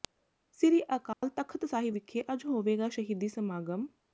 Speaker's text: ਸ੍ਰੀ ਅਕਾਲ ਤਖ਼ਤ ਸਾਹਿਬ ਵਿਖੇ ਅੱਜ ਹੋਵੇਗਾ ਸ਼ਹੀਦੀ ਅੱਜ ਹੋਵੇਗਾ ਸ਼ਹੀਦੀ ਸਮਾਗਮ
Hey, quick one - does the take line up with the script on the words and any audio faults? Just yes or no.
no